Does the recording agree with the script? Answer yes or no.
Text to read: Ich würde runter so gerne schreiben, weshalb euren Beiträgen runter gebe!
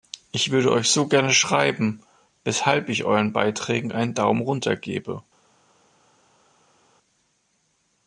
no